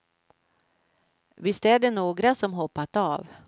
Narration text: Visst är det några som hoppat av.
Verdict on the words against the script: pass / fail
pass